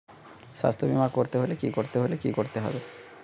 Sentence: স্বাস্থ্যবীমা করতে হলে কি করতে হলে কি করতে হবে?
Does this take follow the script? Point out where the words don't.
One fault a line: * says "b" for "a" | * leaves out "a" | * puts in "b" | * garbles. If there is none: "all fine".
all fine